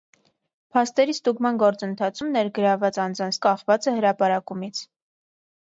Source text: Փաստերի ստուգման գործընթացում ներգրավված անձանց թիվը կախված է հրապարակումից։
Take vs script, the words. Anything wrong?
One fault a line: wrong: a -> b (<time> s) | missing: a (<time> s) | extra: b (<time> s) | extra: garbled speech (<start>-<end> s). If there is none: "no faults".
missing: թիվը (3.4 s)